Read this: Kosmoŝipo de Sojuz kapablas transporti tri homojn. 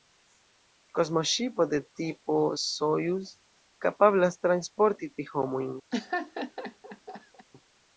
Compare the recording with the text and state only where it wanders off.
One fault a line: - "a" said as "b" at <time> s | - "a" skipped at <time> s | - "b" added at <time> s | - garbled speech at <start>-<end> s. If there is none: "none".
- "tipo" added at 2.0 s